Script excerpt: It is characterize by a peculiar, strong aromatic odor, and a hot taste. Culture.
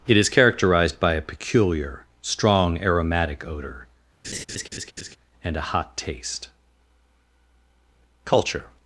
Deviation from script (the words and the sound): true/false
true